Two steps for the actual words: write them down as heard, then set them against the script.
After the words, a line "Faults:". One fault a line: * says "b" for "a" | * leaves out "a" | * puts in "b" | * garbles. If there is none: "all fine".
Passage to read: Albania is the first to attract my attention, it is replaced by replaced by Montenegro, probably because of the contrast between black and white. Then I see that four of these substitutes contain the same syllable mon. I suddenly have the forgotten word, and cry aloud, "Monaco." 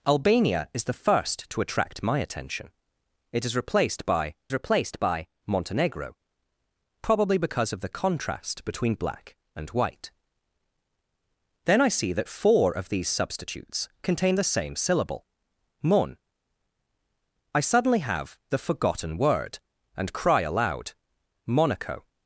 Albania is the first to attract my attention, it is replaced by replaced by Montenegro, probably because of the contrast between black and white. Then I see that four of these substitutes contain the same syllable mon. I suddenly have the forgotten word, and cry aloud, "Monaco."
Faults:
all fine